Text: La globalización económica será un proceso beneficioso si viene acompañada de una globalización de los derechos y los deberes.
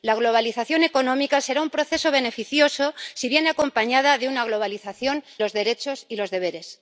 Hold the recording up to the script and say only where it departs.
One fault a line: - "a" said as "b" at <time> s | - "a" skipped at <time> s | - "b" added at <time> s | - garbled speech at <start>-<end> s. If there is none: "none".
- "de" skipped at 5.2 s